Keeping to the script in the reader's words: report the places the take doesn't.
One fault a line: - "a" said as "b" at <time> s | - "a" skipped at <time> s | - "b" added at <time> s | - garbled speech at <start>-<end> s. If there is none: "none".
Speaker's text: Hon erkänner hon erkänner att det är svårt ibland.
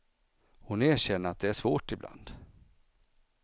- "hon erkänner" skipped at 1.3 s